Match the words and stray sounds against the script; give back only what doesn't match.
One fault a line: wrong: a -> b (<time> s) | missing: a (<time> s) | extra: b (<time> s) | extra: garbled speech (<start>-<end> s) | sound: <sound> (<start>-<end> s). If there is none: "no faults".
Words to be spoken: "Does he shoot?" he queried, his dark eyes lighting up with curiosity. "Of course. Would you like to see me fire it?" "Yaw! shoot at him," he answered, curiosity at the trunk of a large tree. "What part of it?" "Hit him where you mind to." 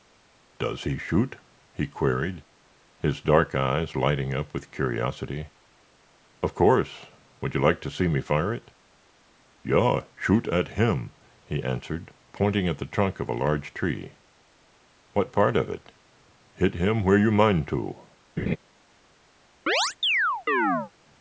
wrong: curiosity -> pointing (12.3 s)
sound: laugh (18.4-18.6 s)
sound: chirp (19.7-20.9 s)